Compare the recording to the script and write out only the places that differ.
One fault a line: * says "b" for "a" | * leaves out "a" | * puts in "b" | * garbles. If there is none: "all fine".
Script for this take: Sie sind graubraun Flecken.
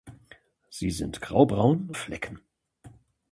all fine